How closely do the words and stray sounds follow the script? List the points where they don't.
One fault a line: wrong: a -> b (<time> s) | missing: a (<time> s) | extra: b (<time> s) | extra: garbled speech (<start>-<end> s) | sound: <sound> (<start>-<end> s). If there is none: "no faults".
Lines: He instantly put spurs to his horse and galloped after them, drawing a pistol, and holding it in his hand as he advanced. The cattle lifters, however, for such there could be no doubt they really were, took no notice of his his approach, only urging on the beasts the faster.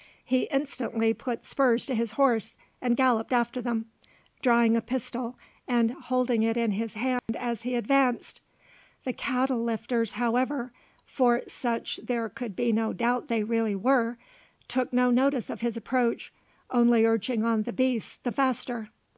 sound: dropout (7.2-7.3 s)
missing: his (15.8 s)